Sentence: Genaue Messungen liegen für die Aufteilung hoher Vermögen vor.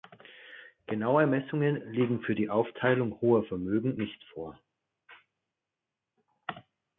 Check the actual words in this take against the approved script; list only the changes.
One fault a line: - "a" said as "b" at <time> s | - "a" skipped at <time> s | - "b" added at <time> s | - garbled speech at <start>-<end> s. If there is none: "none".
- "nicht" added at 4.0 s